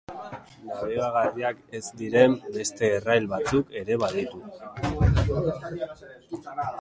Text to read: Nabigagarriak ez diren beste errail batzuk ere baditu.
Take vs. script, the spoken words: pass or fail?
pass